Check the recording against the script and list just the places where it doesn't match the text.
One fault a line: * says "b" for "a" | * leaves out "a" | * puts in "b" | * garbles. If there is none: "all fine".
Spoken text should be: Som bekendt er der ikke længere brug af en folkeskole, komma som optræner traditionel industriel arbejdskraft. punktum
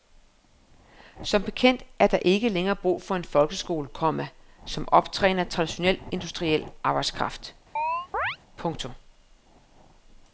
* says "for" for "af"